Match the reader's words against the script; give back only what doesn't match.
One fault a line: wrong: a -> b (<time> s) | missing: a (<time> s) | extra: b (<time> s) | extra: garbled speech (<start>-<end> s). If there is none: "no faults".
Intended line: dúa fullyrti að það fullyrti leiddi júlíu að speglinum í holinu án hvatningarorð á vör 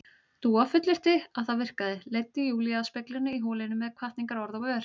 wrong: fullyrti -> virkaði (1.6 s)
wrong: án -> með (3.8 s)